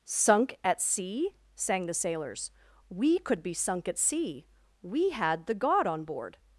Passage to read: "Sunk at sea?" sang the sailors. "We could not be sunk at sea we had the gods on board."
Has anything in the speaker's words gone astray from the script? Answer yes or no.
yes